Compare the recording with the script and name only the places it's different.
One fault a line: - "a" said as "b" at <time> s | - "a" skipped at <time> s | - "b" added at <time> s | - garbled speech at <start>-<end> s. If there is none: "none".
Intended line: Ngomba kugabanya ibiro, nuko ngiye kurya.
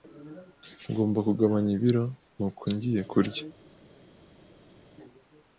none